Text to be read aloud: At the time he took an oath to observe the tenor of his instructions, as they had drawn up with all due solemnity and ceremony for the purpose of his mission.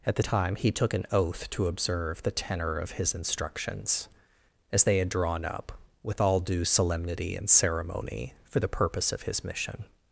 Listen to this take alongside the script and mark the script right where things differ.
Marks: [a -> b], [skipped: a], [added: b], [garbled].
At the time he took an oath to observe the tenor of his instructions, as they had drawn up with all due solemnity and ceremony for the purpose of his mission.